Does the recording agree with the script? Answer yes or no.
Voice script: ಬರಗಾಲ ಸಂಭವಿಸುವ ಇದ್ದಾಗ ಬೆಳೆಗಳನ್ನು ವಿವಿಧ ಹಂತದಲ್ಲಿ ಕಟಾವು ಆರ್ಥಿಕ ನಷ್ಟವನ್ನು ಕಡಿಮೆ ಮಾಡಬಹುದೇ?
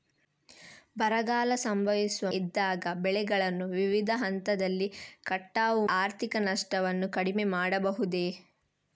yes